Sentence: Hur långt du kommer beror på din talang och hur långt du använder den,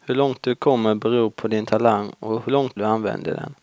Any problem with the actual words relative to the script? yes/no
no